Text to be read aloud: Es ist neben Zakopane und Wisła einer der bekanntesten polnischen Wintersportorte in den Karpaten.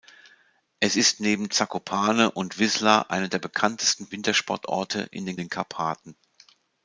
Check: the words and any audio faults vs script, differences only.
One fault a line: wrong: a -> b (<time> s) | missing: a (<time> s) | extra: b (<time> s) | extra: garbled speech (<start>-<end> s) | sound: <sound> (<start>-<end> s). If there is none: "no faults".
missing: polnischen (4.1 s)
extra: den (5.3 s)